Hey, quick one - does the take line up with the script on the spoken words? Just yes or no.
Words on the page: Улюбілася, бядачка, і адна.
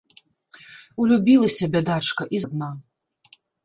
yes